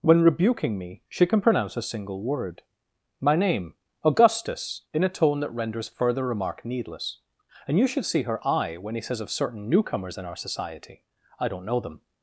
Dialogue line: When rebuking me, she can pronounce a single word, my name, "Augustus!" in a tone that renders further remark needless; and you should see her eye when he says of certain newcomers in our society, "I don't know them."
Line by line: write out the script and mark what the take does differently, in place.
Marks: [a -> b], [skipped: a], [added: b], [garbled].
When rebuking me, she can pronounce a single word, my name, "Augustus!" in a tone that renders further remark needless; and you should see her eye when he says of certain newcomers in our society, "I don't know them."